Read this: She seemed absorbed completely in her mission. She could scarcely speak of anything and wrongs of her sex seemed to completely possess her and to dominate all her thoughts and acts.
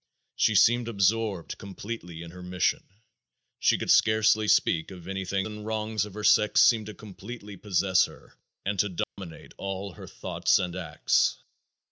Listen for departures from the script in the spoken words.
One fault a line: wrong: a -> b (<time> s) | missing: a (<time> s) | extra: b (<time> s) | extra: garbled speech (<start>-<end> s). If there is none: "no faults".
no faults